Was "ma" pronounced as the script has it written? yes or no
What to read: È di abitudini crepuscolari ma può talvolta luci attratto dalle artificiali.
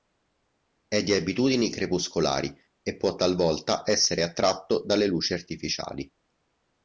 no